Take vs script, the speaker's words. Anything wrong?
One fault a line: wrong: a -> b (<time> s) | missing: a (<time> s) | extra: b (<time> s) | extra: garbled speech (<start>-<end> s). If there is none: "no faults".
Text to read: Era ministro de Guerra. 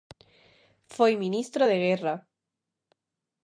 wrong: Era -> Foi (0.9 s)